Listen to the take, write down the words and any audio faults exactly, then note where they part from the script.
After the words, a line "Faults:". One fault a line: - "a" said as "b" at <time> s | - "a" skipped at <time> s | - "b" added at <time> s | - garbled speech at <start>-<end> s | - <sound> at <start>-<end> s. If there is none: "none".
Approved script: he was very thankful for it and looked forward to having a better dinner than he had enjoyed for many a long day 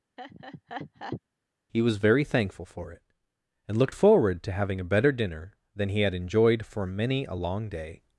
he was very thankful for it and looked forward to having a better dinner than he had enjoyed for many a long day
Faults:
- laugh at 0.2-1.2 s